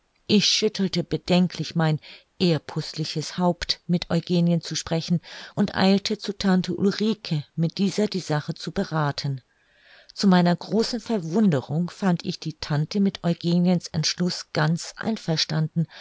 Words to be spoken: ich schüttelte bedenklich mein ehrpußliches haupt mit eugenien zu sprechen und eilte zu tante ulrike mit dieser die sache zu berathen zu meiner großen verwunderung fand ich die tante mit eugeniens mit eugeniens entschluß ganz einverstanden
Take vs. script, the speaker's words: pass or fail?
fail